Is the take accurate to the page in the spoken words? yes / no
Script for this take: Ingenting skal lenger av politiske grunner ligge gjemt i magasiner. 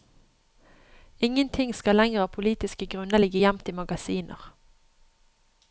yes